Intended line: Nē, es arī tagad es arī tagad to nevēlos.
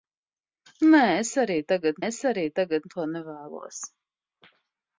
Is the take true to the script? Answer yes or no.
yes